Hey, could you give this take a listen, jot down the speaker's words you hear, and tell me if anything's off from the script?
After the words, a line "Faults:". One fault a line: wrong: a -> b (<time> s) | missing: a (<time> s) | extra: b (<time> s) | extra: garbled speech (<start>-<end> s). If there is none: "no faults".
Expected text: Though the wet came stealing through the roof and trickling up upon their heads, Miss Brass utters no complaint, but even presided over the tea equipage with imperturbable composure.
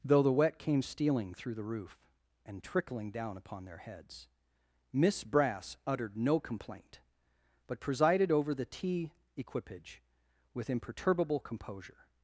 Though the wet came stealing through the roof and trickling down upon their heads, Miss Brass uttered no complaint, but presided over the tea equipage with imperturbable composure.
Faults:
wrong: up -> down (3.1 s)
wrong: utters -> uttered (5.9 s)
missing: even (7.8 s)